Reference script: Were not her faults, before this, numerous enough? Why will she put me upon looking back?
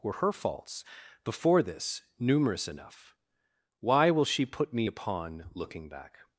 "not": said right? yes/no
no